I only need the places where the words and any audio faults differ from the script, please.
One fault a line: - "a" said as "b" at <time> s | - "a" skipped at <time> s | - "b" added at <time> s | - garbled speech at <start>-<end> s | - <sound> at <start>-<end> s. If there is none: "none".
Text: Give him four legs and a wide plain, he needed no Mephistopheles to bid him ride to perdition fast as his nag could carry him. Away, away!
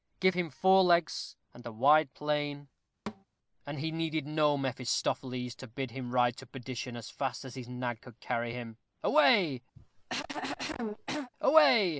- thud at 3.1-3.2 s
- "and" added at 3.7 s
- "as" added at 7.0 s
- cough at 9.8-11.3 s